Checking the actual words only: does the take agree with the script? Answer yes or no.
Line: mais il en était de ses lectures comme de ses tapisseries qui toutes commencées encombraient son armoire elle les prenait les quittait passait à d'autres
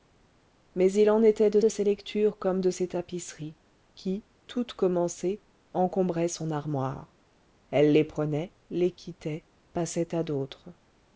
no